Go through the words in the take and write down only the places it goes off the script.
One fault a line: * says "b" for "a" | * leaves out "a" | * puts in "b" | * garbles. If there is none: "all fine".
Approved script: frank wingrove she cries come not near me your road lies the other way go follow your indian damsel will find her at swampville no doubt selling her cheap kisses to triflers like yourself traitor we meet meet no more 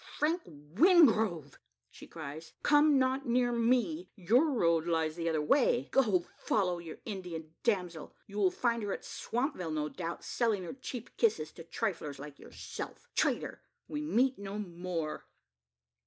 * puts in "you"
* leaves out "meet"